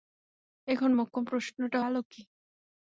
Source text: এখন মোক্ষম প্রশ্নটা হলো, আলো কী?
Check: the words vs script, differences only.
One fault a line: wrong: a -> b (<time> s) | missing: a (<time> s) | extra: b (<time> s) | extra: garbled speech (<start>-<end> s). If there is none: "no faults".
missing: হলো (1.8 s)